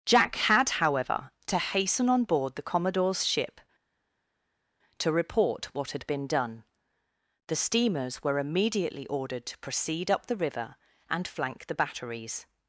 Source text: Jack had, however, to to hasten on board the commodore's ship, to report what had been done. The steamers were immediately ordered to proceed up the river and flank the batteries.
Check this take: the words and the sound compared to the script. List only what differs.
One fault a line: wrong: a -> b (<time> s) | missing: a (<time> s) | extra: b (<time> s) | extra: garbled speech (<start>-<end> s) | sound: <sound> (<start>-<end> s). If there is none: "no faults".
missing: to (1.6 s)